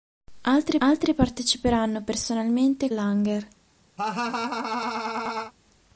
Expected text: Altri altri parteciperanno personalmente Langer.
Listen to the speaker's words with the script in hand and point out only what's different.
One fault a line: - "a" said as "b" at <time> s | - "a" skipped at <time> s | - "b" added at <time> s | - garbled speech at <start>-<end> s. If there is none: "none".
none